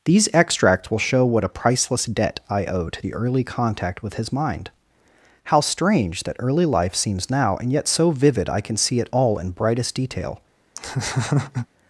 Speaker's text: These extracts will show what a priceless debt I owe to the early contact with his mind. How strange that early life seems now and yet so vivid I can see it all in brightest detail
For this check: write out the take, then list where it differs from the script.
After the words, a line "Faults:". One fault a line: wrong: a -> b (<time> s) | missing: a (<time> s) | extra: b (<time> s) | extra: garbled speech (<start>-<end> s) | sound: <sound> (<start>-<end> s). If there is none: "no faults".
These extracts will show what a priceless debt I owe to the early contact with his mind. How strange that early life seems now and yet so vivid I can see it all in brightest detail
Faults:
sound: laugh (10.8-11.7 s)